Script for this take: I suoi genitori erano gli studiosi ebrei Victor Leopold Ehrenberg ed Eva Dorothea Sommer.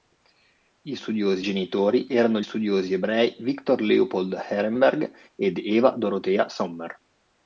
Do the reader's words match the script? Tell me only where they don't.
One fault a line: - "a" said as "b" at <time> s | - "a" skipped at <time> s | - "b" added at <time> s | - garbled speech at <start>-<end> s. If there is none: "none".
- "suoi" said as "studiosi" at 0.9 s
- "gli" skipped at 2.4 s